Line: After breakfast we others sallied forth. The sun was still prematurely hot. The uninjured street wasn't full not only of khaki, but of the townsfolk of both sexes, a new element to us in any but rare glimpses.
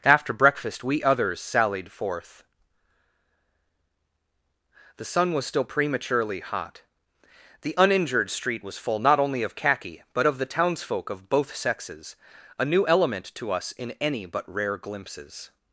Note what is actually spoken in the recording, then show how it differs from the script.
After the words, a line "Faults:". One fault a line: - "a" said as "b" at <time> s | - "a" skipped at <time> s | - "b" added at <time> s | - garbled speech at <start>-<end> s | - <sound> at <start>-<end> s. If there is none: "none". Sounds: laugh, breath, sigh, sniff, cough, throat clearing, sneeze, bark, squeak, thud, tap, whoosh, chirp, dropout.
After breakfast we others sallied forth. The sun was still prematurely hot. The uninjured street was full not only of khaki, but of the townsfolk of both sexes, a new element to us in any but rare glimpses.
Faults:
- "wasn't" said as "was" at 8.6 s